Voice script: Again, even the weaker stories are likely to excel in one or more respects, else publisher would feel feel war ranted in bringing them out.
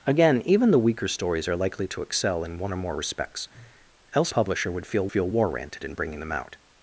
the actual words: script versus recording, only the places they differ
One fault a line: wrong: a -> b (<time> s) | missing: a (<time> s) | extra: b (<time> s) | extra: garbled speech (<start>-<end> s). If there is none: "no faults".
no faults